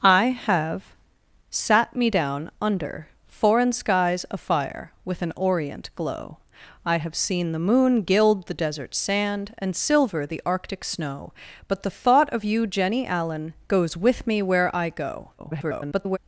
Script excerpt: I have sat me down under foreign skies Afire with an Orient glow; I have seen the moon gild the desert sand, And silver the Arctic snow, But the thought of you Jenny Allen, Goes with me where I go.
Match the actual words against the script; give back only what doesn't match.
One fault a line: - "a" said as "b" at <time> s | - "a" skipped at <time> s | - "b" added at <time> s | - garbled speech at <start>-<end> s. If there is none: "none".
- garbled speech at 15.4-16.2 s